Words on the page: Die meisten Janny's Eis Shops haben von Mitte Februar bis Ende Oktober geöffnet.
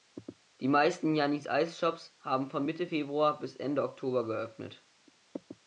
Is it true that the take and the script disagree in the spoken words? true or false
false